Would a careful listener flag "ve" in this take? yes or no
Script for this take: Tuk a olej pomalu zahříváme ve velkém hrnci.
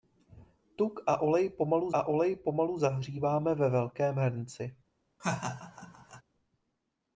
no